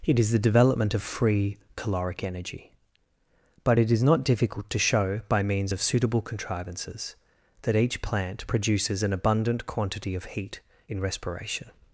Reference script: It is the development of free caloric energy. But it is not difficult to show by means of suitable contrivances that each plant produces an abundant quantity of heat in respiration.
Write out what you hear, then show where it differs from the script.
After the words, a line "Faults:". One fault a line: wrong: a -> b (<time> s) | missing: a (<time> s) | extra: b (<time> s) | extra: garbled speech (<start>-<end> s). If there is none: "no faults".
It is the development of free caloric energy. But it is not difficult to show by means of suitable contrivances that each plant produces an abundant quantity of heat in respiration.
Faults:
no faults